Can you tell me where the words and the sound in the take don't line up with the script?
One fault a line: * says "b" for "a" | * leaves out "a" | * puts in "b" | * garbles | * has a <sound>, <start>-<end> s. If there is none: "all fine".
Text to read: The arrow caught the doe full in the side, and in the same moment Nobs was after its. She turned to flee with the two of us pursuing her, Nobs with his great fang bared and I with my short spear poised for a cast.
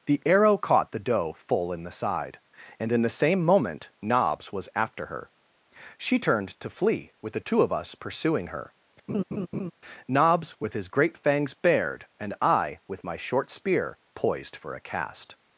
* says "her" for "its"
* has a laugh, 9.1-9.7 s
* says "fangs" for "fang"